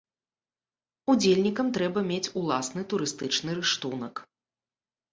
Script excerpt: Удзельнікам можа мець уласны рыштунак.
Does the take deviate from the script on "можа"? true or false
true